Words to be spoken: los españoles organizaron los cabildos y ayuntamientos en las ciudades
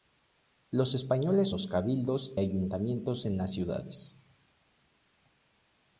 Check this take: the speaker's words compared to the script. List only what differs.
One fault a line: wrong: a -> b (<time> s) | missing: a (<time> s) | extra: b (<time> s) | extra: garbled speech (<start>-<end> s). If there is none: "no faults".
missing: organizaron (1.5 s)
missing: y (2.3 s)